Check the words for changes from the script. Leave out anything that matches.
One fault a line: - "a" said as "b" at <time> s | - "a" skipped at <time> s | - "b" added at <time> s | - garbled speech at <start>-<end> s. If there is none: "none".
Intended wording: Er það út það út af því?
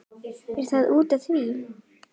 - "það út" skipped at 1.1 s